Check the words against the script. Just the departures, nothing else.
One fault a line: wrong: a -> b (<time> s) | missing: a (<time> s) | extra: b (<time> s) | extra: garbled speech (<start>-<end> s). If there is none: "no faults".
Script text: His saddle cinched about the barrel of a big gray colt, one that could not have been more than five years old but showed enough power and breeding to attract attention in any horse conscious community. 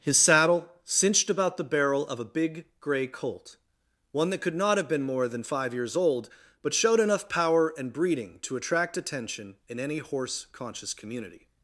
no faults